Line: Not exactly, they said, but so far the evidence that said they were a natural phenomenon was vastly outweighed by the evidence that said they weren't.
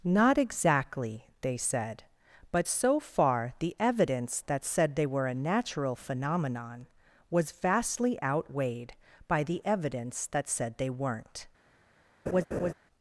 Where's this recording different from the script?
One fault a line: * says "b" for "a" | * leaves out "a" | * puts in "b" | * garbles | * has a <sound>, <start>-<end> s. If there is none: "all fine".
* has a laugh, 12.3-12.7 s